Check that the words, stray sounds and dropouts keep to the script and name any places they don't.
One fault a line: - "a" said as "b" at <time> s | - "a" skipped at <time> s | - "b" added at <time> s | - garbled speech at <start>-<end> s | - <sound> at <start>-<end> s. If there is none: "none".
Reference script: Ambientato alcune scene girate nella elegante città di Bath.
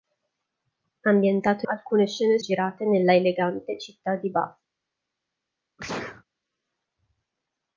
- sneeze at 5.8-6.2 s